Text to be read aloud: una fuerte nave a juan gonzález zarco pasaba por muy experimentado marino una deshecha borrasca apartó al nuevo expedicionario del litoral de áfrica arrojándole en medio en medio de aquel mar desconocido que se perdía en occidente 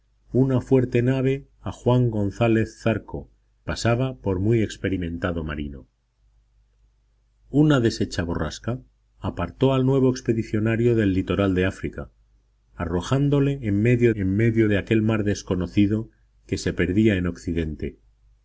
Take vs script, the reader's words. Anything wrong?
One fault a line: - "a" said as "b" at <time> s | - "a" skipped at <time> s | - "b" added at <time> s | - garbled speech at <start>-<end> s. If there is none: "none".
none